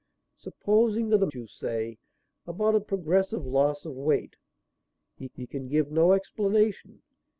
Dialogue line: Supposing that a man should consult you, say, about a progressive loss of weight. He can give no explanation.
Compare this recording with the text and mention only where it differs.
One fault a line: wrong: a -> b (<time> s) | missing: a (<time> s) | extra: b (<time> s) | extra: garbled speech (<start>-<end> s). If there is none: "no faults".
missing: man should consult (1.3 s)
extra: he (5.3 s)